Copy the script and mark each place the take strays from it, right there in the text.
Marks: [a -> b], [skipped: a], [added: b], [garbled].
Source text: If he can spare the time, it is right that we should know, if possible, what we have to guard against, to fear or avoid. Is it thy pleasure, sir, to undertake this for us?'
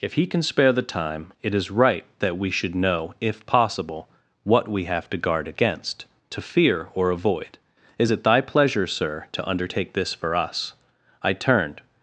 If he can spare the time, it is right that we should know, if possible, what we have to guard against, to fear or avoid. Is it thy pleasure, sir, to undertake this for us?' [added: I turned]